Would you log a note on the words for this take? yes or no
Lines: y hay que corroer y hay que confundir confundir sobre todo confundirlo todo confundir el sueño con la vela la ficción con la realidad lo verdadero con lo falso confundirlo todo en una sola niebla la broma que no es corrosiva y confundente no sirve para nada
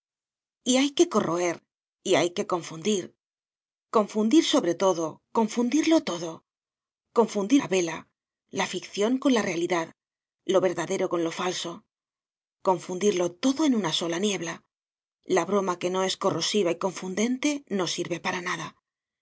yes